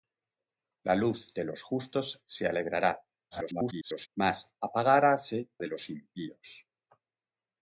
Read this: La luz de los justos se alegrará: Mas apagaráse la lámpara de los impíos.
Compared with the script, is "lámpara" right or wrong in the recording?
wrong